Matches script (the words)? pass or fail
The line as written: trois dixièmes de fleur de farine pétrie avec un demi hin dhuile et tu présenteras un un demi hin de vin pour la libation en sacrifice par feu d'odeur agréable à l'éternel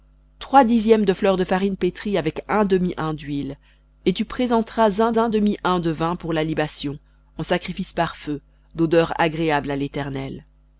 pass